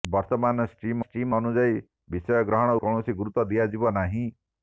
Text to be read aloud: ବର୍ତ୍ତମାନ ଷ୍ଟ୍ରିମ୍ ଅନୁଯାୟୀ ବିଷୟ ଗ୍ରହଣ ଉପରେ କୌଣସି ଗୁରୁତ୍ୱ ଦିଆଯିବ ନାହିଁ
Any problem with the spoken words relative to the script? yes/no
yes